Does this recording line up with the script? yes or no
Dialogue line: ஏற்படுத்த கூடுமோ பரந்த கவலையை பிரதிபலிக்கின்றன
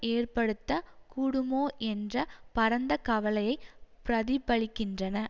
no